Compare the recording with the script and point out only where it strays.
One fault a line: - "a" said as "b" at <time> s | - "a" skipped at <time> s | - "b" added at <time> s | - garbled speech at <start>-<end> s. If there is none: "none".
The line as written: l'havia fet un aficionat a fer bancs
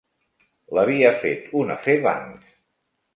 - "aficionat" skipped at 1.7 s